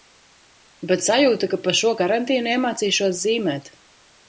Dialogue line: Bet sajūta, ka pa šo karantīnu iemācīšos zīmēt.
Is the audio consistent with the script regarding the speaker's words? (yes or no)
yes